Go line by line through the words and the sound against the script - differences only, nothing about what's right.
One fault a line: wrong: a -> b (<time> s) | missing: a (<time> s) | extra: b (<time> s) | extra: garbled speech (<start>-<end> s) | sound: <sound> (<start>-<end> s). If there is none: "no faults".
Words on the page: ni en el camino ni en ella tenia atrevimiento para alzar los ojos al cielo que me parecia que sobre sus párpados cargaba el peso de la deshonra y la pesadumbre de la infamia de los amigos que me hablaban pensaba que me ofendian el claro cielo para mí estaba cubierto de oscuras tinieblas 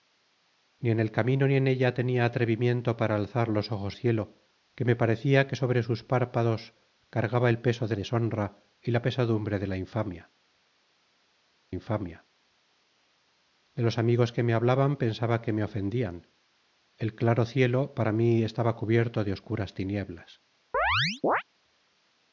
missing: al (4.0 s)
missing: la (8.0 s)
extra: infamia (11.7 s)
sound: chirp (20.7-21.4 s)